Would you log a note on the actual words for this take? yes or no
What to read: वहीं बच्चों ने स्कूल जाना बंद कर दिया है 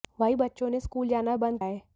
yes